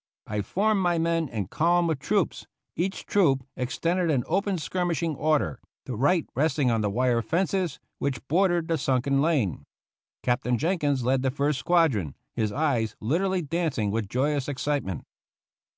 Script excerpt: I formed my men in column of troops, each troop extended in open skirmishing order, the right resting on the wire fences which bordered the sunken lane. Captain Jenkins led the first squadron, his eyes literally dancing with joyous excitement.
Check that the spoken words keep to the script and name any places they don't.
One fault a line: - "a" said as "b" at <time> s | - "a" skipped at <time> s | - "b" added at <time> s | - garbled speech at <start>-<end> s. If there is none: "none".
none